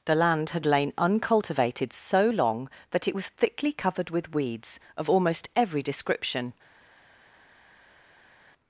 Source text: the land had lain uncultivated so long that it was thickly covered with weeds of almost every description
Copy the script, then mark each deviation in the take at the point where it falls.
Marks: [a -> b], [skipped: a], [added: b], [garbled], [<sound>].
the land had lain uncultivated so long that it was thickly covered with weeds of almost every description